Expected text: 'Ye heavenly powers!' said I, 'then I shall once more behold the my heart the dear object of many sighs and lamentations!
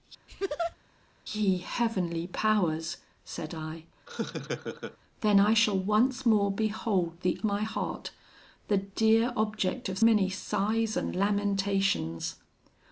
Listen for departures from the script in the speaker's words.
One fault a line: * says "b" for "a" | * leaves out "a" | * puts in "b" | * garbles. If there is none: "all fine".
all fine